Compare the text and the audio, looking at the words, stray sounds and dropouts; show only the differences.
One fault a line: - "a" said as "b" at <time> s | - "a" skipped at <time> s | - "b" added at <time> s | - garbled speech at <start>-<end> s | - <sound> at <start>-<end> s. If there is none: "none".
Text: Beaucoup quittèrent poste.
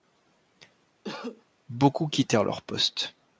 - cough at 1.0-1.5 s
- "leur" added at 2.4 s